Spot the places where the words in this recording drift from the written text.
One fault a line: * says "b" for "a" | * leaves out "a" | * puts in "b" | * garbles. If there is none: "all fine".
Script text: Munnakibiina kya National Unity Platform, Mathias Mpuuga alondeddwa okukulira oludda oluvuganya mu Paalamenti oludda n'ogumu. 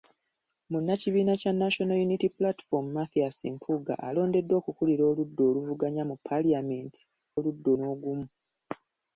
all fine